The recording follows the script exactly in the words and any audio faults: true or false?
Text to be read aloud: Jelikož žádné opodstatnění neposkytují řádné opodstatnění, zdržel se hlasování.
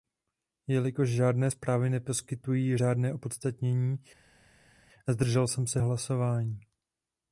false